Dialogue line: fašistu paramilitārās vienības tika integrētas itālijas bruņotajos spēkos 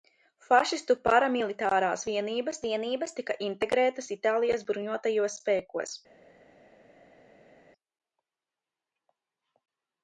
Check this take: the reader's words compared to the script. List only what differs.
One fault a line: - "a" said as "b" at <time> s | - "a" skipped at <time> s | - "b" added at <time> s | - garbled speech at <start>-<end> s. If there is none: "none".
- "vienības" added at 2.7 s